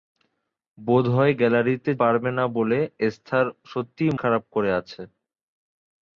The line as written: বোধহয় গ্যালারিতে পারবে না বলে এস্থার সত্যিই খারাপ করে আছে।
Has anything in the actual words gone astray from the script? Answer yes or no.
no